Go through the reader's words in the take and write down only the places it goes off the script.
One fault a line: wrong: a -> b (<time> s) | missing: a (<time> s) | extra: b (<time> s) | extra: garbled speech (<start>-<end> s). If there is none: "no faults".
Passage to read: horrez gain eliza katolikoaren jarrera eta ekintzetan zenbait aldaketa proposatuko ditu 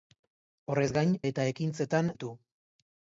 missing: eliza katolikoaren jarrera (1.1 s)
missing: zenbait aldaketa proposatuko (2.1 s)